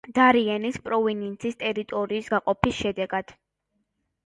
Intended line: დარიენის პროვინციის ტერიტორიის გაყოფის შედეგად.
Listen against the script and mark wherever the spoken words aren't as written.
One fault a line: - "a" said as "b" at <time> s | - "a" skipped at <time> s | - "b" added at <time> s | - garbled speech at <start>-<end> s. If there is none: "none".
none